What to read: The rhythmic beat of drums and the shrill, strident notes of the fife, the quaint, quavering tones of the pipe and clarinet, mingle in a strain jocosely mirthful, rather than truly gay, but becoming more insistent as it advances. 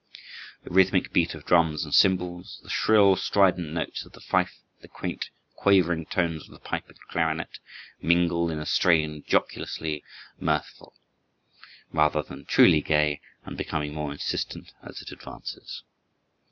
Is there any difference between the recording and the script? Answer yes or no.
yes